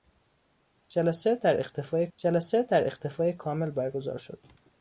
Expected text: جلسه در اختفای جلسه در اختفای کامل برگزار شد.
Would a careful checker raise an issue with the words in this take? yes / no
no